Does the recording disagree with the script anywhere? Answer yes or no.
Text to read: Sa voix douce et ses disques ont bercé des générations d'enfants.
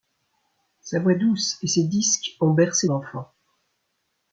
yes